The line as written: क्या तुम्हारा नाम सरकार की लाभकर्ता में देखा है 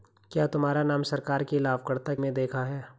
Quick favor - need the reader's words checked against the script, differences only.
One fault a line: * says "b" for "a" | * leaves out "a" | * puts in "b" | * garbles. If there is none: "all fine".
all fine